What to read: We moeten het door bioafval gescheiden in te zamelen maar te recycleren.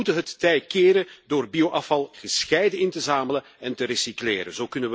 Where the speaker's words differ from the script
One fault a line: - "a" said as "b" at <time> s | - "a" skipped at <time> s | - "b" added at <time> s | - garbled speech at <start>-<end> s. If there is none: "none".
- "tij keren" added at 0.4 s
- "maar" said as "en" at 3.6 s